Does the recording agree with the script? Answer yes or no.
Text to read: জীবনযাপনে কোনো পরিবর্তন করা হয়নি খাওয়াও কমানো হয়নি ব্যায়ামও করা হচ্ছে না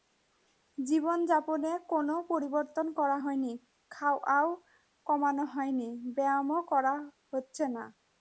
yes